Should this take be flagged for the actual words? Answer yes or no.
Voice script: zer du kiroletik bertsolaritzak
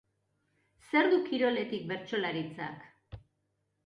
no